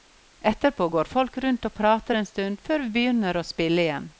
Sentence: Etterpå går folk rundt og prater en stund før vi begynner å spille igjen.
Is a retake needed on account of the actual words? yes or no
no